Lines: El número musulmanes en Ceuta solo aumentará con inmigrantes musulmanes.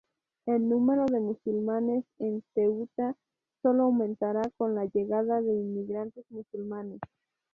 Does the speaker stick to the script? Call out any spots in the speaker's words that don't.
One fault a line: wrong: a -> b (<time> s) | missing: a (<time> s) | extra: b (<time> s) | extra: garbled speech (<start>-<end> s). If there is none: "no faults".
extra: de (1.1 s)
extra: la llegada de (4.7 s)